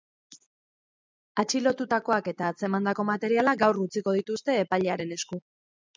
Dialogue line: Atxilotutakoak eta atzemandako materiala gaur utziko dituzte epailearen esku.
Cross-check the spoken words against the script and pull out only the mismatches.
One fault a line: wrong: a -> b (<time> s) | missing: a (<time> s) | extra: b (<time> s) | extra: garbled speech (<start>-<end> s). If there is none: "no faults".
no faults